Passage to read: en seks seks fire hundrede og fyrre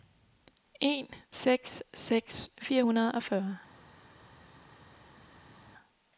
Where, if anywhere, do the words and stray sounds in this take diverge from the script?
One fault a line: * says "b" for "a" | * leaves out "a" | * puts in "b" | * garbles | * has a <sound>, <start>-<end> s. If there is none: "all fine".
all fine